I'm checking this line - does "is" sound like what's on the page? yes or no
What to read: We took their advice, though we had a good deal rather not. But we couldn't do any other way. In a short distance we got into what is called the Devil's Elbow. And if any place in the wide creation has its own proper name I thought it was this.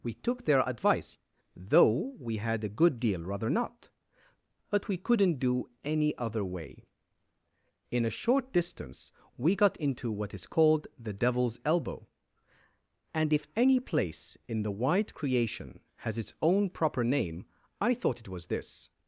yes